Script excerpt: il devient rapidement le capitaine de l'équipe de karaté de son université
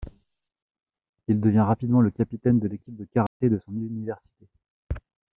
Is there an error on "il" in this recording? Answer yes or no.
no